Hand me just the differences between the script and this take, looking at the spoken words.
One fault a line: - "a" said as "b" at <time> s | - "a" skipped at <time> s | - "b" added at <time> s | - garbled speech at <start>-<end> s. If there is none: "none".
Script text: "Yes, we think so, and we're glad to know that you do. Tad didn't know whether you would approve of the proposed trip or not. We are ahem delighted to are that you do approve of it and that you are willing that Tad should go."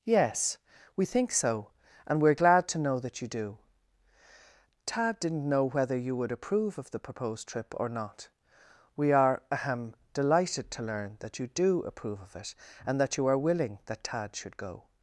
- "are" said as "learn" at 10.8 s